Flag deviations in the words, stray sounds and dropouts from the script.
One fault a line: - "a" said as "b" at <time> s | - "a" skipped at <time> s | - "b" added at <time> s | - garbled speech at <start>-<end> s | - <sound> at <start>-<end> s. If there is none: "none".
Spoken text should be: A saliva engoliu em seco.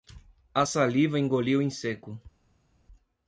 none